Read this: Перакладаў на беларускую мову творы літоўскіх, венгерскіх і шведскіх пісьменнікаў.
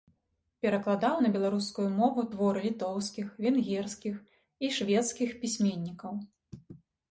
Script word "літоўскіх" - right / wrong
right